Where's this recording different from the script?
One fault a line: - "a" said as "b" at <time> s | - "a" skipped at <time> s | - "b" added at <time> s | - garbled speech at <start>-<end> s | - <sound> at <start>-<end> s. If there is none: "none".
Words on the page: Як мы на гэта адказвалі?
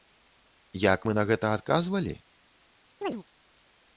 - chirp at 3.0-3.2 s